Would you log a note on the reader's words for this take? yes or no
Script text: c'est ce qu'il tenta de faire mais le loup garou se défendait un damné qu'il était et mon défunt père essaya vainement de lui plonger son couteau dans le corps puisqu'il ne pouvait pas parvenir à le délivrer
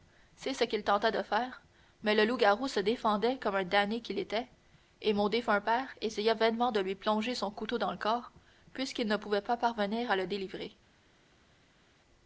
yes